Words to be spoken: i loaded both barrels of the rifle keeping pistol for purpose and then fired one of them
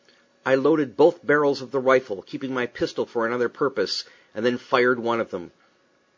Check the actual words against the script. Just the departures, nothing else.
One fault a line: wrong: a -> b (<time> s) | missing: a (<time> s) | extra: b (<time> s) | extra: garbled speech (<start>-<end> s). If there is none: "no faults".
extra: my (2.5 s)
extra: another (3.3 s)